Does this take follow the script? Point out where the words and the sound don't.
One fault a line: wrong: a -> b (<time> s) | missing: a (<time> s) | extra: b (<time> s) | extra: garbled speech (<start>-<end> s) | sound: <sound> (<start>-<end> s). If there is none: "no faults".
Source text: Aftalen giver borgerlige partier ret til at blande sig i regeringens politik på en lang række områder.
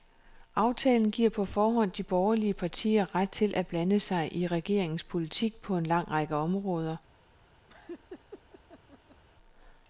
extra: på forhånd de (1.3 s)
sound: laugh (7.7-9.2 s)